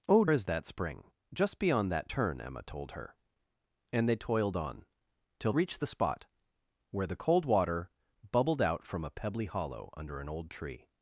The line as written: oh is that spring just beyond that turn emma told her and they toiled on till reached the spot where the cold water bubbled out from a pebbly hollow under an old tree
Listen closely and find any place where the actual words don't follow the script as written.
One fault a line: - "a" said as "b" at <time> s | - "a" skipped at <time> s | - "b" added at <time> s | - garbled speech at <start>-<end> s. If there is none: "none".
none